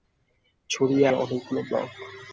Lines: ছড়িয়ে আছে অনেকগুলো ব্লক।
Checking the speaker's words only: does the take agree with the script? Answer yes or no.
no